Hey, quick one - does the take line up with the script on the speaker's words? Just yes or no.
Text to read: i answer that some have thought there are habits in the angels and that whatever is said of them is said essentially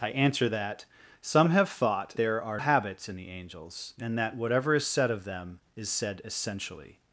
yes